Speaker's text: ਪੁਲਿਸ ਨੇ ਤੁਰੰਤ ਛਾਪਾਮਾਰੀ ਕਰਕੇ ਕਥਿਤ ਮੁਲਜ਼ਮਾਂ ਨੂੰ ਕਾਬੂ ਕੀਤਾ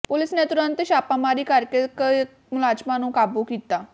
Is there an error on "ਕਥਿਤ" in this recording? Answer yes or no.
yes